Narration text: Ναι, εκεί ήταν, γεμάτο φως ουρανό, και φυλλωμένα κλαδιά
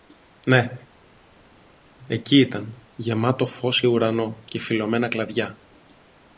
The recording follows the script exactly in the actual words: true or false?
true